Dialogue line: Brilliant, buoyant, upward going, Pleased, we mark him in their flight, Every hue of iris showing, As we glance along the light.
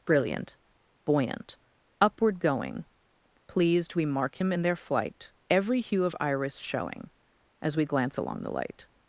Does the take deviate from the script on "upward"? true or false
false